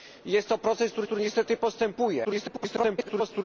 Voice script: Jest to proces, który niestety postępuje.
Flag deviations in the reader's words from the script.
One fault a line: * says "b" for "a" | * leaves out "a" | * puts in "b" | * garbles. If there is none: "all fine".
* puts in "który"
* garbles